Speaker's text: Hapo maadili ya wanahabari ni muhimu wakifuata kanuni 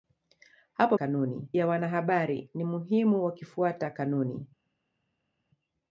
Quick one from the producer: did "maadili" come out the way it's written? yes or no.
no